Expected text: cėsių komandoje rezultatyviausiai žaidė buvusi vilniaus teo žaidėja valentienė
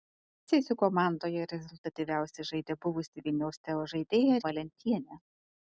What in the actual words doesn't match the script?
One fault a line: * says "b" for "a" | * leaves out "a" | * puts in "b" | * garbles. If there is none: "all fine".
all fine